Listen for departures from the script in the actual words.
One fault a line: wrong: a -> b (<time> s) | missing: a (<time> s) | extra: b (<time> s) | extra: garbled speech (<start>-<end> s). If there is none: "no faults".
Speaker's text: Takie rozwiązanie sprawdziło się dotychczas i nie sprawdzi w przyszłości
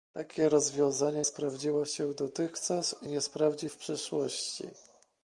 no faults